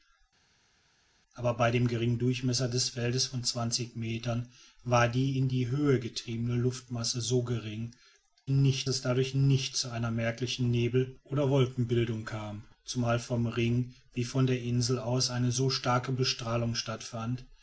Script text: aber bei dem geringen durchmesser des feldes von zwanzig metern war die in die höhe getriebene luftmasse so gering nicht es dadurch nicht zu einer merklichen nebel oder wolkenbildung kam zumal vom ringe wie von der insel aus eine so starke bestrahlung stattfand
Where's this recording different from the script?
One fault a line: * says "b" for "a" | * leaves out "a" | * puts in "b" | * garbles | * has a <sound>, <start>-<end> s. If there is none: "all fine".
all fine